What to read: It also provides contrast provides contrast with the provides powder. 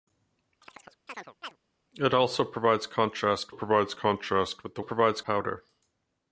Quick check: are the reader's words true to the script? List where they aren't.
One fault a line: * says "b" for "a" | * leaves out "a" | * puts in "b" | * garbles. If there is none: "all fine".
all fine